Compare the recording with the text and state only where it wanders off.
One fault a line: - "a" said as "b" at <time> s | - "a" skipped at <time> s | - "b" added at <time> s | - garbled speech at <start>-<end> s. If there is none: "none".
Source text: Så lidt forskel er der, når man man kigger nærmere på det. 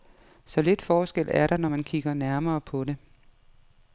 - "man" skipped at 1.8 s